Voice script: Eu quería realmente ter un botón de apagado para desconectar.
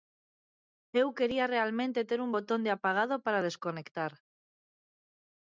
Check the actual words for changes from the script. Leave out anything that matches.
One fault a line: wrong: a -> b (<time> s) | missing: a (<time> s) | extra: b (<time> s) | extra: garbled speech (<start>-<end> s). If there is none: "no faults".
no faults